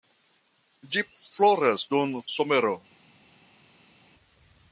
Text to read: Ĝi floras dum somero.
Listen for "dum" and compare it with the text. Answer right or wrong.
right